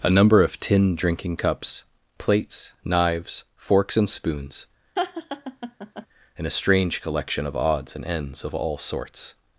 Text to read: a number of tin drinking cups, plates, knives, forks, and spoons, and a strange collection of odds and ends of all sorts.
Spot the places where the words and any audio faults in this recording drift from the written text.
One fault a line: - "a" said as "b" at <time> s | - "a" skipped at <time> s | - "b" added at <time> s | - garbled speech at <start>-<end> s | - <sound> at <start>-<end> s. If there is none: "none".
- laugh at 5.0-6.1 s